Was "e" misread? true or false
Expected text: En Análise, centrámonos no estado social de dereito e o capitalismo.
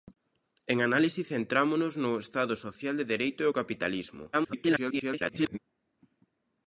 false